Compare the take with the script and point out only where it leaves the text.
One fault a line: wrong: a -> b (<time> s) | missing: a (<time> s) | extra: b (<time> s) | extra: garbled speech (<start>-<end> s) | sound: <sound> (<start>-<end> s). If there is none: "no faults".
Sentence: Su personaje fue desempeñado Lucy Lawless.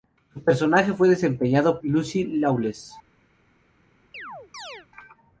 sound: chirp (4.1-4.9 s)